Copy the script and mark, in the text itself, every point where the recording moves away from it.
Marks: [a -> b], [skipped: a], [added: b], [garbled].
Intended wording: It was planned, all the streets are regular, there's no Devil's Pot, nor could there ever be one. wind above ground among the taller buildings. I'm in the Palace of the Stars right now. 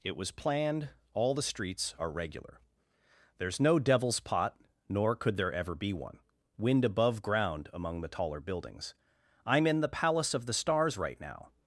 It was planned, all the streets are regular, there's no Devil's Pot, nor could there ever be one. wind above ground among the taller buildings. I'm in the Palace of the Stars right now.